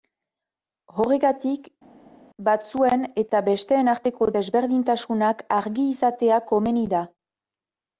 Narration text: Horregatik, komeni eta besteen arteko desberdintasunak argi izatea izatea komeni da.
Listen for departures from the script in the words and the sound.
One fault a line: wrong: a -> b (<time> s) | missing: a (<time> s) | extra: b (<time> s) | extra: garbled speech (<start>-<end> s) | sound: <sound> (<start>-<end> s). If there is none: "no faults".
wrong: komeni -> batzuen (2.5 s)
missing: izatea (6.4 s)